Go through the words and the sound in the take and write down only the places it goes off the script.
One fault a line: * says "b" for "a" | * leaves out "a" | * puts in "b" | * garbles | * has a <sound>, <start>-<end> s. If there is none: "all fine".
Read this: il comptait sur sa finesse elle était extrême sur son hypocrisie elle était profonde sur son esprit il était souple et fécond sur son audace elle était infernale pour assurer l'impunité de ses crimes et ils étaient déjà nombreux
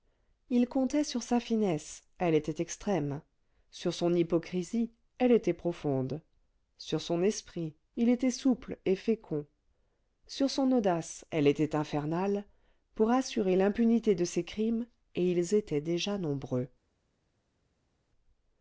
all fine